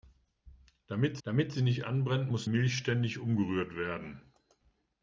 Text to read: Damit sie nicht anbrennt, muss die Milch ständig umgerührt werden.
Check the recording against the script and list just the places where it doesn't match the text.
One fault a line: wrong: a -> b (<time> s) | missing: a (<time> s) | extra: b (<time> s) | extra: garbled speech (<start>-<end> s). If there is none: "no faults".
extra: damit (1.2 s)
missing: die (2.5 s)